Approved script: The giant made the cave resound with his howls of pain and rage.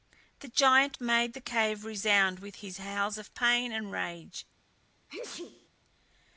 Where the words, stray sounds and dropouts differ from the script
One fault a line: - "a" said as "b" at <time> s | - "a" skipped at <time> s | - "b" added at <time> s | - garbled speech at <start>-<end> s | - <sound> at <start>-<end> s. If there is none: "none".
- sneeze at 5.1-5.7 s